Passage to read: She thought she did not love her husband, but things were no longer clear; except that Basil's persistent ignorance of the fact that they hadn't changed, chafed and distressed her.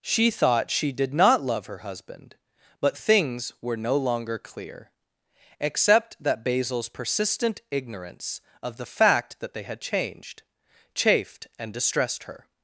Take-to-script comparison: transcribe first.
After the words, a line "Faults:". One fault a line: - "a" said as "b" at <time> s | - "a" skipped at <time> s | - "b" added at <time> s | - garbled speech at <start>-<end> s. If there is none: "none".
She thought she did not love her husband, but things were no longer clear; except that Basil's persistent ignorance of the fact that they had changed, chafed and distressed her.
Faults:
- "hadn't" said as "had" at 9.6 s